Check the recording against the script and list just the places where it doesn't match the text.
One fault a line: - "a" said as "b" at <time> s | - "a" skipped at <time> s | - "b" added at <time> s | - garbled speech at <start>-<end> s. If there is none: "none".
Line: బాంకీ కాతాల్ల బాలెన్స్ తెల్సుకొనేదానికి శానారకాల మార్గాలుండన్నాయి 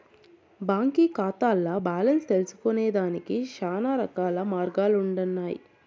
none